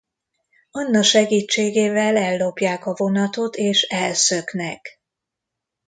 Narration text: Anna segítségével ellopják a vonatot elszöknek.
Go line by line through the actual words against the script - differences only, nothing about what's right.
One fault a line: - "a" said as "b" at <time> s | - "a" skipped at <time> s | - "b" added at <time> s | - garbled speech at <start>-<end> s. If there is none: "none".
- "és" added at 3.6 s